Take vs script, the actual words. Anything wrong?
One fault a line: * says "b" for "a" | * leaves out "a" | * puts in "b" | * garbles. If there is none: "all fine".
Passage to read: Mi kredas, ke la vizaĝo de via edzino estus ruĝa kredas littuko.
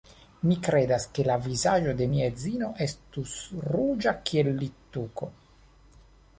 * says "mia" for "via"
* says "kiel" for "kredas"